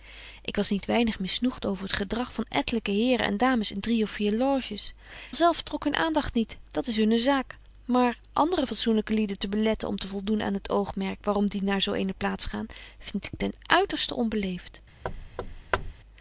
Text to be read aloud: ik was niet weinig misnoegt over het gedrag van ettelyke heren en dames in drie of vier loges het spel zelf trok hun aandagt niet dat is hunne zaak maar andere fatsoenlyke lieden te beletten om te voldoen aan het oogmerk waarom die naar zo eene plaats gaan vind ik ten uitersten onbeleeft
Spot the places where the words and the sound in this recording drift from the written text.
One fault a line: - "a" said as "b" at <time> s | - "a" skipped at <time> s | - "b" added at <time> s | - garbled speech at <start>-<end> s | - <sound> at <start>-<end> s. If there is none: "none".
- "het spel" skipped at 4.9 s
- thud at 15.0-15.9 s